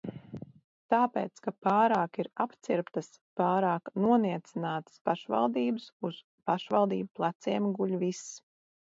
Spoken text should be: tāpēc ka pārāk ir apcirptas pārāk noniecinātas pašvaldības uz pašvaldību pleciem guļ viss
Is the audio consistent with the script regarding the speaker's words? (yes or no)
yes